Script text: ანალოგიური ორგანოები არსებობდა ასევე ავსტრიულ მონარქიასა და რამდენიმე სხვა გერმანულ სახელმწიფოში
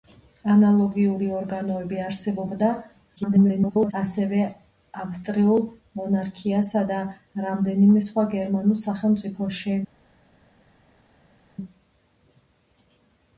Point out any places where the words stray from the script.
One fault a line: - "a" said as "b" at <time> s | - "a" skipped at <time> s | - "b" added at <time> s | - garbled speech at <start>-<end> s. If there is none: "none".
- garbled speech at 3.2-3.9 s